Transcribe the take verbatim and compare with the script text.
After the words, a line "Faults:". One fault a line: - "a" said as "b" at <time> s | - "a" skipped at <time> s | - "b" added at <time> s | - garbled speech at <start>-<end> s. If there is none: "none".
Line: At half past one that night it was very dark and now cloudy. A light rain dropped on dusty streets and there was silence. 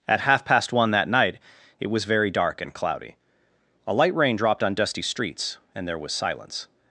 At half past one that night it was very dark and cloudy. A light rain dropped on dusty streets and there was silence.
Faults:
- "now" skipped at 2.7 s